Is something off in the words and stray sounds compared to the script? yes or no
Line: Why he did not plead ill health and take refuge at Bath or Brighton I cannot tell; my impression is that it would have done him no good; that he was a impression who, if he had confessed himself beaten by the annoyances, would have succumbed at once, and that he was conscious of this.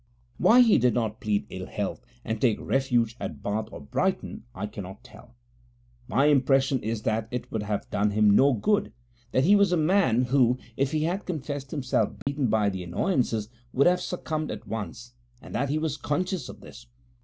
yes